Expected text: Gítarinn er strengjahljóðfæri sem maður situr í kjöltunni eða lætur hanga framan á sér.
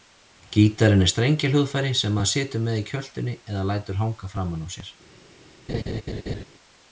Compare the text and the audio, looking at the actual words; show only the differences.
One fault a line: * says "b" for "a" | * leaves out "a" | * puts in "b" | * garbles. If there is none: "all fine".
* puts in "með"